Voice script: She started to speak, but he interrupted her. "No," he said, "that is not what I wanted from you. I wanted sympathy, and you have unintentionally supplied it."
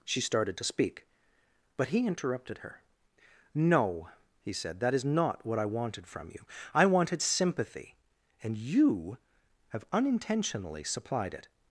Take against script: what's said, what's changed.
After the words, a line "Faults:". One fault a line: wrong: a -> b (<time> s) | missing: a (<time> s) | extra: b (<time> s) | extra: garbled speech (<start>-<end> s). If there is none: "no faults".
She started to speak, but he interrupted her. "No," he said, "that is not what I wanted from you. I wanted sympathy, and you have unintentionally supplied it."
Faults:
no faults